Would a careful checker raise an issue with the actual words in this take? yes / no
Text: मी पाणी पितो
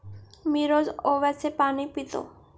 yes